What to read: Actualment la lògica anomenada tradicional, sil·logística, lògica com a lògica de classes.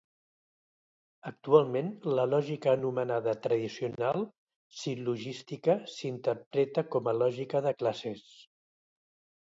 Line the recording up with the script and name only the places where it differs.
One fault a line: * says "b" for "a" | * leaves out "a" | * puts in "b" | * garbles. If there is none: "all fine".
* says "s'interpreta" for "lògica"